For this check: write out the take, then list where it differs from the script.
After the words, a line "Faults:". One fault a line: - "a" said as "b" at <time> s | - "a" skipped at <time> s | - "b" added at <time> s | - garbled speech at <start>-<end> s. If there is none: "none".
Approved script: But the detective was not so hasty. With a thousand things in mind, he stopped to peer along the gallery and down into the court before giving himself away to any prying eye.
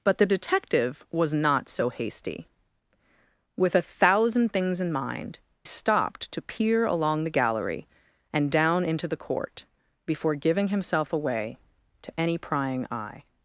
But the detective was not so hasty. With a thousand things in mind, stopped to peer along the gallery and down into the court before giving himself away to any prying eye.
Faults:
- "he" skipped at 5.4 s